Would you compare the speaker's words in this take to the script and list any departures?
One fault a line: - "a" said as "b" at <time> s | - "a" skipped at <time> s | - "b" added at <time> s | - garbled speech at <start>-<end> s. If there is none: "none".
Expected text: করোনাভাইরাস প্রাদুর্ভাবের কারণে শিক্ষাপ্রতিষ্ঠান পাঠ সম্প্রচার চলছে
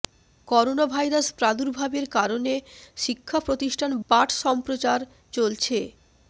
none